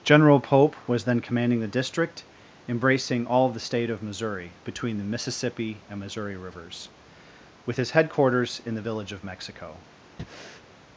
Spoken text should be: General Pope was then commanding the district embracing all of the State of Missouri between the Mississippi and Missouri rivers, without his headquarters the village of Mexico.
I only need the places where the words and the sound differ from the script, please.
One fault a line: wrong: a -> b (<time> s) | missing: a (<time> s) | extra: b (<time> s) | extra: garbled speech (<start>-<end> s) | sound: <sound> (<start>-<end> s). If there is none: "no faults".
wrong: without -> with (7.7 s)
extra: in (8.6 s)
sound: breath (10.2-10.7 s)